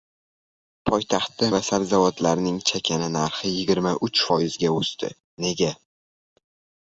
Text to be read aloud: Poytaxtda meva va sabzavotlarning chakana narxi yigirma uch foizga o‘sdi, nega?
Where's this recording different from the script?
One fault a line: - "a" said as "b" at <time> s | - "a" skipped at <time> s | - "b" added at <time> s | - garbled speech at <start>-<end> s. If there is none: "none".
- "meva" skipped at 1.5 s